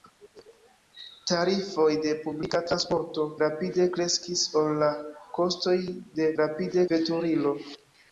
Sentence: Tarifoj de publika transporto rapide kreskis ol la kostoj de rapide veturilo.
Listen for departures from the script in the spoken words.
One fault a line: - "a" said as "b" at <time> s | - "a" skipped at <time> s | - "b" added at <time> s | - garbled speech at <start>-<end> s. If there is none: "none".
none